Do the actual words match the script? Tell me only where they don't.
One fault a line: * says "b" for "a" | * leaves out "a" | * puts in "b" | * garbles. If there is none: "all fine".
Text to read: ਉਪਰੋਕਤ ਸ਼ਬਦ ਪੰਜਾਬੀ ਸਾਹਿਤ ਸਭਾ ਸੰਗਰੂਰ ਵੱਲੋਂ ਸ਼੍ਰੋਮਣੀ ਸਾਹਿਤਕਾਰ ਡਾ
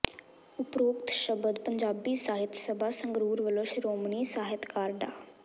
all fine